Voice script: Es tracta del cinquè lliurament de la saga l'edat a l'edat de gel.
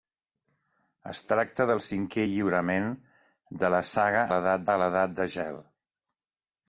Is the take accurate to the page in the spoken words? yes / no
yes